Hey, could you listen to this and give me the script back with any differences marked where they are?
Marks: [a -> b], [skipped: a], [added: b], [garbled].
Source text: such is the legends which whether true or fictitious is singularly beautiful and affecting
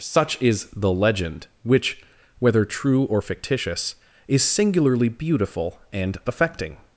such is the [legends -> legend] which whether true or fictitious is singularly beautiful and affecting